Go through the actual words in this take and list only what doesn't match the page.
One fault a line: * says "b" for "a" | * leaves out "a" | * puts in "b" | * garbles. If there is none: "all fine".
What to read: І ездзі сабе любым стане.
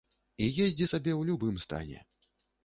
* puts in "ў"